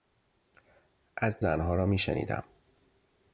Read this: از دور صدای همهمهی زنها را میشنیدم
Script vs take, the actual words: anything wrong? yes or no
yes